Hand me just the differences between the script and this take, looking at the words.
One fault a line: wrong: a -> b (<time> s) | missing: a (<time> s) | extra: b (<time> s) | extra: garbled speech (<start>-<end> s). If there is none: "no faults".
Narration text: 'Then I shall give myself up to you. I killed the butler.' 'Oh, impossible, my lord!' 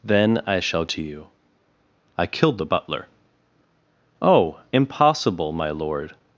missing: give myself up (0.8 s)